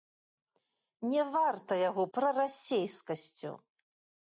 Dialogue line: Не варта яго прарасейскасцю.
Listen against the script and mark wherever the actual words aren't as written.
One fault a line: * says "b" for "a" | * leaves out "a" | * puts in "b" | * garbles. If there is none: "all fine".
all fine